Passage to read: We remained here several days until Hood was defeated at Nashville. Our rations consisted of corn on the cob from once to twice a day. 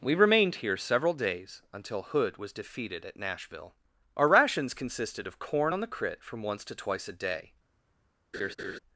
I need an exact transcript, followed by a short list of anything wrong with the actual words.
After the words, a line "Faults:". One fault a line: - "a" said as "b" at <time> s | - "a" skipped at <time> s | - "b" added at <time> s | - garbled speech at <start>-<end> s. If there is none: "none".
We remained here several days until Hood was defeated at Nashville. Our rations consisted of corn on the crit from once to twice a day.
Faults:
- "cob" said as "crit" at 5.9 s